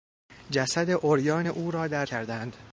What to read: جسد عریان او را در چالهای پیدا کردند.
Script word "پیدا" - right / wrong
wrong